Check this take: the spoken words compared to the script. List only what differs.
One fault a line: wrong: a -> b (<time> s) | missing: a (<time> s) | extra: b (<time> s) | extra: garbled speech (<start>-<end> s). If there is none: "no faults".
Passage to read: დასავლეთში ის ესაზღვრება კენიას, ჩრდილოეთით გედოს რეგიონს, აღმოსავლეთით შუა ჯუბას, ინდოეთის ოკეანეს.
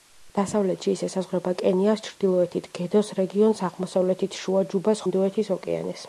no faults